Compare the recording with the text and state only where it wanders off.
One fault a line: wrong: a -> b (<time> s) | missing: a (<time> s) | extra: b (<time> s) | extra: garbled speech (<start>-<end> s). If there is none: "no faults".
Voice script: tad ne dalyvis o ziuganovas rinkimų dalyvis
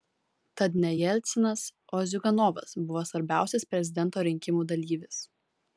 wrong: dalyvis -> jelcinas (1.0 s)
extra: buvo svarbiausias prezidento (2.9 s)